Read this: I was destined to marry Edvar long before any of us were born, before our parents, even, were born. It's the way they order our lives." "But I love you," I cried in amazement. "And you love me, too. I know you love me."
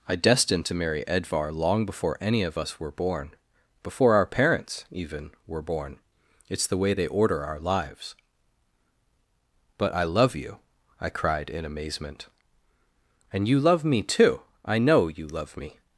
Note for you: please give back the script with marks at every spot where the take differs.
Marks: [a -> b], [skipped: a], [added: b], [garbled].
I [skipped: was] destined to marry Edvar long before any of us were born, before our parents, even, were born. It's the way they order our lives." "But I love you," I cried in amazement. "And you love me, too. I know you love me."